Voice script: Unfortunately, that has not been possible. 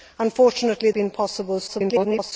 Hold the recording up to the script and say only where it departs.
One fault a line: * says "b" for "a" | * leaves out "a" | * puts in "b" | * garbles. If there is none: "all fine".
* leaves out "that has not"
* garbles